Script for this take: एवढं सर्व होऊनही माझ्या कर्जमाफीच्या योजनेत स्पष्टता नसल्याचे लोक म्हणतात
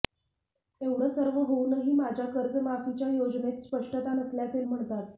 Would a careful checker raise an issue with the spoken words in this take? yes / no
yes